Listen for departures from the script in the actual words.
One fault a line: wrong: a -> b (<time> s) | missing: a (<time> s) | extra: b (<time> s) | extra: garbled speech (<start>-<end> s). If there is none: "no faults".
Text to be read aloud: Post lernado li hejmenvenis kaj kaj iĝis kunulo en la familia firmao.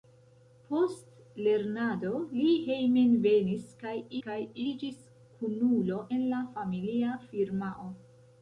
no faults